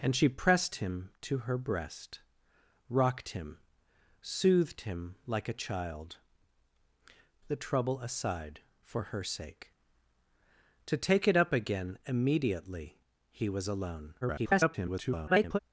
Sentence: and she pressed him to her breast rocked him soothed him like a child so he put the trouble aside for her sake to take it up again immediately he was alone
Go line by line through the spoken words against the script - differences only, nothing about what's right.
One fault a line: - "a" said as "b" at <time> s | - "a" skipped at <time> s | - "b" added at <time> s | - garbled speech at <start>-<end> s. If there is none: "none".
- "so he put" skipped at 6.2 s
- garbled speech at 14.2-15.6 s